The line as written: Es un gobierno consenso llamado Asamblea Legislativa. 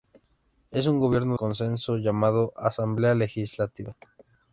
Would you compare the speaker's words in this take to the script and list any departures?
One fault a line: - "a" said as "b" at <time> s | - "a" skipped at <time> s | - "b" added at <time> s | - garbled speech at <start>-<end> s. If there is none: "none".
none